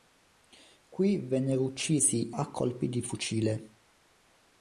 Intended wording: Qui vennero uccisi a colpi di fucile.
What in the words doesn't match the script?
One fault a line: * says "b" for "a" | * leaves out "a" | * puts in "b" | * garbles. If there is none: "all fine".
all fine